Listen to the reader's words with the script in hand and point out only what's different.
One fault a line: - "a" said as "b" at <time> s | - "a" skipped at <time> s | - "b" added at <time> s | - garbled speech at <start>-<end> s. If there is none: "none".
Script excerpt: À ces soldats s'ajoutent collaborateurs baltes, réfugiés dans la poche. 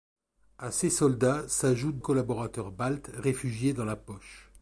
none